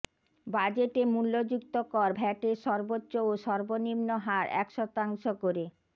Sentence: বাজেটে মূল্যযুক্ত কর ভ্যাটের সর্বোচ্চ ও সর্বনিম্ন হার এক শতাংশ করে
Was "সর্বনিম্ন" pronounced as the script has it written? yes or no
yes